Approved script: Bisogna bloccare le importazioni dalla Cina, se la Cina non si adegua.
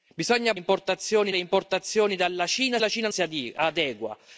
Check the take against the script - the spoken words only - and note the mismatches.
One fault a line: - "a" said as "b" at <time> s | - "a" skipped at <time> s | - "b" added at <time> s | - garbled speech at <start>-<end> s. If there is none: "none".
- "bloccare" said as "importazioni" at 0.5 s
- "se" skipped at 2.8 s
- "non" skipped at 3.1 s